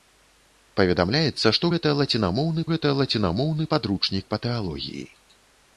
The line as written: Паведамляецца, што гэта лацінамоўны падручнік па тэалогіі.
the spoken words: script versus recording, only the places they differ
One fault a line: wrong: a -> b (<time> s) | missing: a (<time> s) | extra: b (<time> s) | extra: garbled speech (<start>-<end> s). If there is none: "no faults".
extra: гэта лацінамоўны (2.7 s)